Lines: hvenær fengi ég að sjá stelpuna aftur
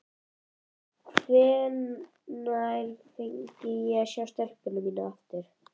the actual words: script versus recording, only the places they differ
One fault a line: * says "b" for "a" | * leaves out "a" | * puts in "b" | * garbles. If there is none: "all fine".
* puts in "mína"